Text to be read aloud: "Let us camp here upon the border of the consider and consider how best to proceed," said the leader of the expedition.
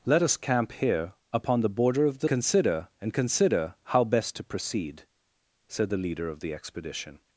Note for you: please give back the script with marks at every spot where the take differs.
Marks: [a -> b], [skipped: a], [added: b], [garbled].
"Let us camp here upon the border of the consider and consider how best to proceed," said the leader of the expedition.